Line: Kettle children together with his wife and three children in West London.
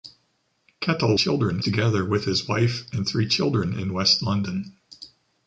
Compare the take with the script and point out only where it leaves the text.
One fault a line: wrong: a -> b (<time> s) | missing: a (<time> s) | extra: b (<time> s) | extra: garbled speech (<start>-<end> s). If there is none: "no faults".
no faults